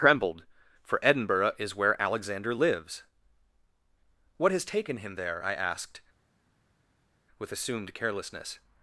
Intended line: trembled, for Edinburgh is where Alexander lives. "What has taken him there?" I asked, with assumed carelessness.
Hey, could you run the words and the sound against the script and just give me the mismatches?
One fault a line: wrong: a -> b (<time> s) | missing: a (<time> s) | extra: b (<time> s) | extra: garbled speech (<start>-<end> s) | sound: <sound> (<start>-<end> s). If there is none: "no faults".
no faults